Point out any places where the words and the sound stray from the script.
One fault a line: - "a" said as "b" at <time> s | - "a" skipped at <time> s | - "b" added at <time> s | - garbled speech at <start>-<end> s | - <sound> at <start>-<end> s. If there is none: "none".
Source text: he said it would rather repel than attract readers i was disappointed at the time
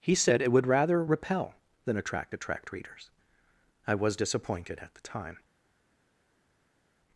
- "attract" added at 2.3 s